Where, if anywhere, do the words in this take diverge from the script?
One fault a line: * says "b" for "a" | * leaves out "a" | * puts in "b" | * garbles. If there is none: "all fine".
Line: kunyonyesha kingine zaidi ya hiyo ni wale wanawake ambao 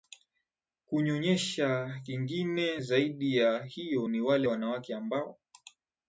all fine